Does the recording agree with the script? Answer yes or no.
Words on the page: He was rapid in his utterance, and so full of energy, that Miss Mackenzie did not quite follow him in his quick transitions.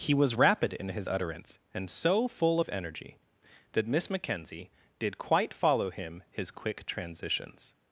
no